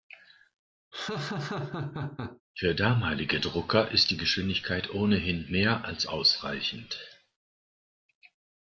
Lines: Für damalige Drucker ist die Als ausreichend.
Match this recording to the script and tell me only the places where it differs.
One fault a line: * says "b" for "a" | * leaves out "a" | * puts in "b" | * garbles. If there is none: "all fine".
* puts in "Geschwindigkeit ohnehin mehr"